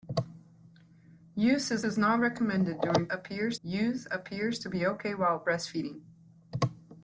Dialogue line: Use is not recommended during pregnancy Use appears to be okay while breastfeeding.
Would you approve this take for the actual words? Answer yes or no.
no